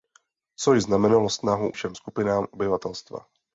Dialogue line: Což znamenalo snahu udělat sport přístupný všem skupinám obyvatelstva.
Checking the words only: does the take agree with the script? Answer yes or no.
no